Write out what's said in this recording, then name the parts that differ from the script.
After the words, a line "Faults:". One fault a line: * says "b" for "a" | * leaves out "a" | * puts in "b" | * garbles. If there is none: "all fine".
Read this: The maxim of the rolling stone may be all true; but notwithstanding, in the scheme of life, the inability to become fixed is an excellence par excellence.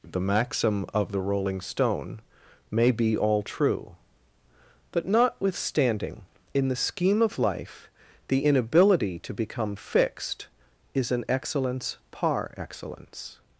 The maxim of the rolling stone may be all true; but notwithstanding, in the scheme of life, the inability to become fixed is an excellence par excellence.
Faults:
all fine